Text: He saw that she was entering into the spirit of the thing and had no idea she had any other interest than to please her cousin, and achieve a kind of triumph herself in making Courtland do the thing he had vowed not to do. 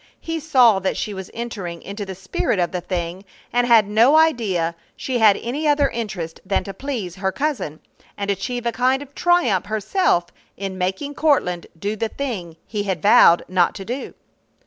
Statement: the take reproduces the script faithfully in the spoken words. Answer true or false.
true